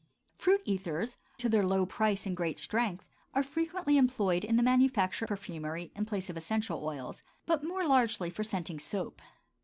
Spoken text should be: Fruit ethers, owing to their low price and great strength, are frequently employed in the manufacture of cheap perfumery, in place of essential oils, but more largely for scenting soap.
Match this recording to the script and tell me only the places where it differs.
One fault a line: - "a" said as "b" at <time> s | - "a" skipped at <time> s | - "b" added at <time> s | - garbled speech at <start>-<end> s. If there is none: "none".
- "owing" skipped at 1.1 s
- "of cheap" skipped at 5.3 s